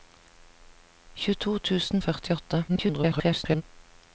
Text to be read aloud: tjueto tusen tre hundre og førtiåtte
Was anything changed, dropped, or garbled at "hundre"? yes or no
yes